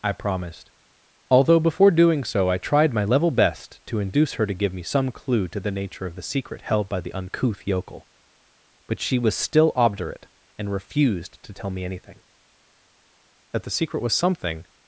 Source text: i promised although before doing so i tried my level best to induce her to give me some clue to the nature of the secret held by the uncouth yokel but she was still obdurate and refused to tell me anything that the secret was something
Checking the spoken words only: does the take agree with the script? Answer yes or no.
yes